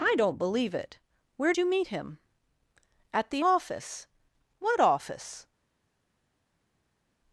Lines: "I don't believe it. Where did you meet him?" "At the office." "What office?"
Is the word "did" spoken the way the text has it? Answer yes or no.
no